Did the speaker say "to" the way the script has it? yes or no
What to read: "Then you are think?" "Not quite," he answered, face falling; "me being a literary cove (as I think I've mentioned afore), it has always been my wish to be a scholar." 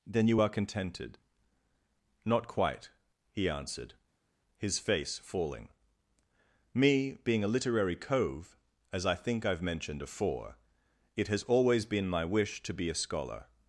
yes